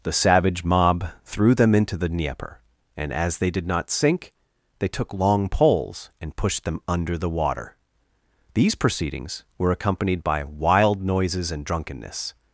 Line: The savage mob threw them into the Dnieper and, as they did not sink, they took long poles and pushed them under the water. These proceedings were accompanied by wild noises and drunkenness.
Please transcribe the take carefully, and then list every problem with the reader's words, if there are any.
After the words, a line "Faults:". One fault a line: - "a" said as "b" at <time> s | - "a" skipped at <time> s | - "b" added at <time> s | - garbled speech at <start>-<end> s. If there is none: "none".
The savage mob threw them into the Dnieper and, as they did not sink, they took long poles and pushed them under the water. These proceedings were accompanied by wild noises and drunkenness.
Faults:
none